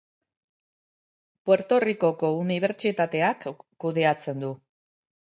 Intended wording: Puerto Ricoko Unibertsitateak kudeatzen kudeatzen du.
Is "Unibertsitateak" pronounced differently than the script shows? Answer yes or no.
no